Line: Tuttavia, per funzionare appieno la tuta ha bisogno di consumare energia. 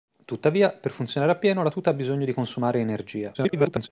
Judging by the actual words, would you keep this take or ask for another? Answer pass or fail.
fail